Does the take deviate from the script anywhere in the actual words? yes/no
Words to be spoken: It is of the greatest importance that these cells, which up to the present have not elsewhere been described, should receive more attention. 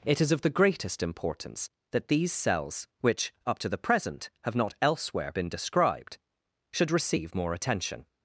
no